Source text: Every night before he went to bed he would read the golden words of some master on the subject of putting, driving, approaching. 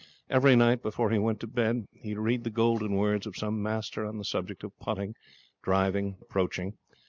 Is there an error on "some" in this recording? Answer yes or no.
no